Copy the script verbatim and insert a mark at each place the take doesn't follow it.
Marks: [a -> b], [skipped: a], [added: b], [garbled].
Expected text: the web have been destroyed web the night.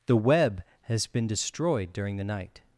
the web [have -> has] been destroyed [web -> during] the night.